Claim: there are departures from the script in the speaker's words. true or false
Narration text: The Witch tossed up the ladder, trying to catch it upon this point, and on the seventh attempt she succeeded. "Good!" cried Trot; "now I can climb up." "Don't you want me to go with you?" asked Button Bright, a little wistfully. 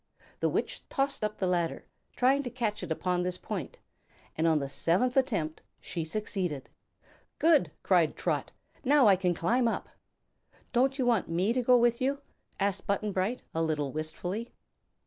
false